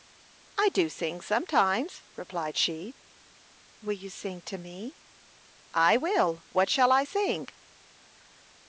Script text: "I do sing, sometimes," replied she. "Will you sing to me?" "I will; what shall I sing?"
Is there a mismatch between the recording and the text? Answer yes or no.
no